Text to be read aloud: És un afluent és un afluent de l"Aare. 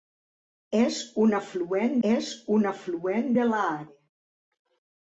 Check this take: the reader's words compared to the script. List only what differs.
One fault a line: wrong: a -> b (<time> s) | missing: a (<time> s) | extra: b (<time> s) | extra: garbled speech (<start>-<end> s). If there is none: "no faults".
no faults